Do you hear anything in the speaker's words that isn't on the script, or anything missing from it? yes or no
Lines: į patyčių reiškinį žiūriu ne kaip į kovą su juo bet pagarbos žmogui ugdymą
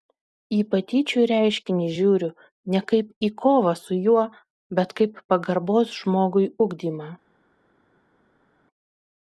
yes